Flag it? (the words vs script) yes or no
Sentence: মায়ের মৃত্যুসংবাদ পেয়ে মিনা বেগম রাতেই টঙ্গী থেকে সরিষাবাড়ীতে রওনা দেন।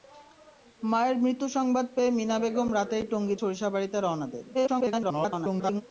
yes